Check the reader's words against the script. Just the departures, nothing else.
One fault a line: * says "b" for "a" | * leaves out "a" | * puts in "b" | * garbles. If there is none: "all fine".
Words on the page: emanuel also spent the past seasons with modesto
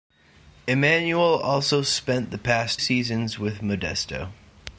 all fine